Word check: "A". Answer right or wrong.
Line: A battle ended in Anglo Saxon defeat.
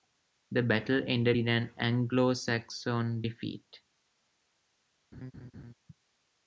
wrong